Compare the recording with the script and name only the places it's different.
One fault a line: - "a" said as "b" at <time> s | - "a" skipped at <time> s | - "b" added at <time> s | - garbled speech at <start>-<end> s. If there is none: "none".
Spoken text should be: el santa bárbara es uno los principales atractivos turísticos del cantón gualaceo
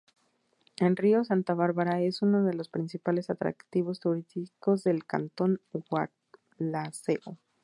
- "río" added at 1.0 s
- "de" added at 2.4 s